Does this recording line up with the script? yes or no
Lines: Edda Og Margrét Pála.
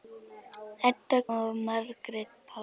yes